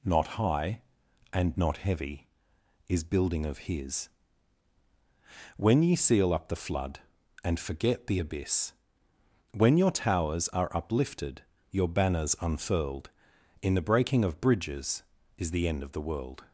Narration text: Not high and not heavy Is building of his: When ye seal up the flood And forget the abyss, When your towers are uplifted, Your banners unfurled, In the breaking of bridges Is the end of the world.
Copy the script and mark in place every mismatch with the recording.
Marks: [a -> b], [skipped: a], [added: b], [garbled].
Not high and not heavy Is building of his: When ye seal up the flood And forget the abyss, When your towers are uplifted, Your banners unfurled, In the breaking of bridges Is the end of the world.